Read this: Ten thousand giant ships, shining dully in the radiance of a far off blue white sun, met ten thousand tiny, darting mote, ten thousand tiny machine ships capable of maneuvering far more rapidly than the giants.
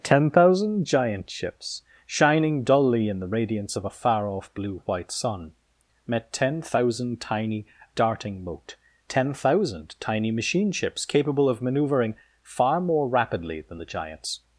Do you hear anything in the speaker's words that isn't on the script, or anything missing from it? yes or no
no